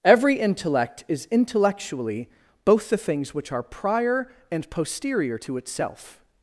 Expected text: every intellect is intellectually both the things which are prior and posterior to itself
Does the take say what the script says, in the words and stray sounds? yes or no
yes